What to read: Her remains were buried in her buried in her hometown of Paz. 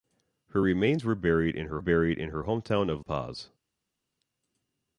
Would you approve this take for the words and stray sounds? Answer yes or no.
yes